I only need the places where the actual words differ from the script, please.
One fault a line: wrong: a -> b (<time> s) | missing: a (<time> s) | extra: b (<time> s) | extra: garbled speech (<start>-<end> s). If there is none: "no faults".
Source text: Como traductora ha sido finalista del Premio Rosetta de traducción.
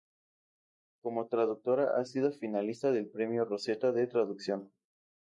no faults